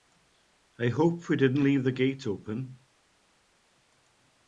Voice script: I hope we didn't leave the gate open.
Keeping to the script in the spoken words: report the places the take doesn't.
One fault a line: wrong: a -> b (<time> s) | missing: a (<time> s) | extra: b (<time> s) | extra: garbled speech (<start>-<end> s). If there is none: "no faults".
no faults